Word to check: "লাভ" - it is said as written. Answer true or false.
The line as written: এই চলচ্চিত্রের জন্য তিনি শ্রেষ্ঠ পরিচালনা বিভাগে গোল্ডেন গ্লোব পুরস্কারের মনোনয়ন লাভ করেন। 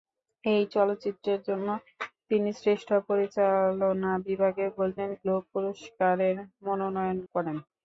false